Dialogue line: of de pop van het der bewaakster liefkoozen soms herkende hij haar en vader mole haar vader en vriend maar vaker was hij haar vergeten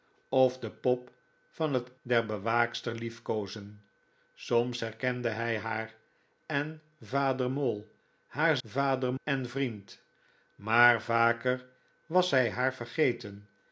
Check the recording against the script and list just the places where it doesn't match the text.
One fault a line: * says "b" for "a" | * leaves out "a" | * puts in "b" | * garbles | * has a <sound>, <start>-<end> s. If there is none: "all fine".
all fine